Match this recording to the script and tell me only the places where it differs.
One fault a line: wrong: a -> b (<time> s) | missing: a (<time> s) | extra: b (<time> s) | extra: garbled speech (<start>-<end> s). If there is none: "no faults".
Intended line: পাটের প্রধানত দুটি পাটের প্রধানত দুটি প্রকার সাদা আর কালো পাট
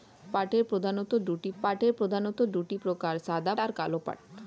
no faults